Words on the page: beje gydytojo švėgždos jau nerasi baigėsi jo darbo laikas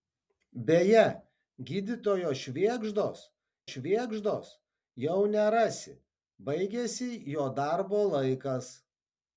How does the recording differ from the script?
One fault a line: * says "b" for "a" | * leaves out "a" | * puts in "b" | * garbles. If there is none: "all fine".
* puts in "švėgždos"